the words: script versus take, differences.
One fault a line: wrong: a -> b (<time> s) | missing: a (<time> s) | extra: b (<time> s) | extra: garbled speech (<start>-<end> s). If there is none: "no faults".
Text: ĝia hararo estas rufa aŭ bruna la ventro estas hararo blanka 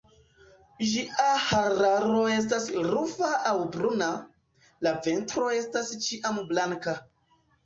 wrong: hararo -> ĉiam (6.1 s)